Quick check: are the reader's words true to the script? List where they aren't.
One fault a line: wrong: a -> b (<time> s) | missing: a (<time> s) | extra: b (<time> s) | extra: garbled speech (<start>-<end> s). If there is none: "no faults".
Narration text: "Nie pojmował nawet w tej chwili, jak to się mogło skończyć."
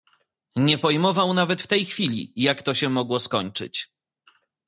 no faults